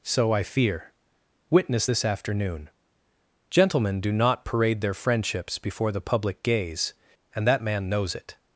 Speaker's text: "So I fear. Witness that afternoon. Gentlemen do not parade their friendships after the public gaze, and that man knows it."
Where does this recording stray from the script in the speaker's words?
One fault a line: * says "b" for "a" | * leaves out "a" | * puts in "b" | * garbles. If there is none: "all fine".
* says "this" for "that"
* says "before" for "after"